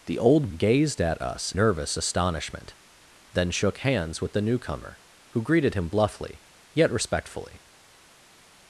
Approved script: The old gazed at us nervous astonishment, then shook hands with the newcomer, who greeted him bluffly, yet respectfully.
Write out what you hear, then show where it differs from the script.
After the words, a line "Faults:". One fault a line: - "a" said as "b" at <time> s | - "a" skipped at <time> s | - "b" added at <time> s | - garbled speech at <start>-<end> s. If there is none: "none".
The old gazed at us nervous astonishment, then shook hands with the newcomer, who greeted him bluffly, yet respectfully.
Faults:
none